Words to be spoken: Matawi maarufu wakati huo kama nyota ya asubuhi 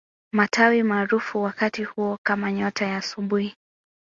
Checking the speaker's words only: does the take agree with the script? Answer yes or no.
yes